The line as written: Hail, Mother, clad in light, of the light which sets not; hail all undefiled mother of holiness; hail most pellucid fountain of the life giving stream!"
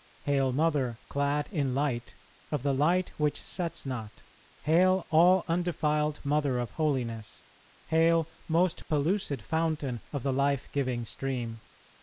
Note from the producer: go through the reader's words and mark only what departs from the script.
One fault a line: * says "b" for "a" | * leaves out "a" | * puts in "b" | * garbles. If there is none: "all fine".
all fine